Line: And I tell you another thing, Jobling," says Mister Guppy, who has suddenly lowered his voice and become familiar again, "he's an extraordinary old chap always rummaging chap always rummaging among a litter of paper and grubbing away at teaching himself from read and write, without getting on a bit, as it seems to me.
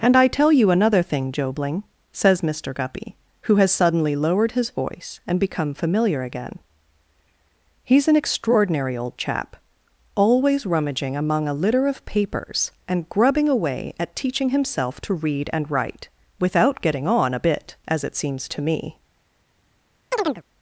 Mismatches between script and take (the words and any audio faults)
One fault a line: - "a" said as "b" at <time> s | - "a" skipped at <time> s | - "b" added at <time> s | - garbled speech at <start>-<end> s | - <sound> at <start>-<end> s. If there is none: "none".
- "chap always rummaging" skipped at 11.2 s
- "paper" said as "papers" at 12.0 s
- "from" said as "to" at 15.0 s
- chirp at 20.1-20.4 s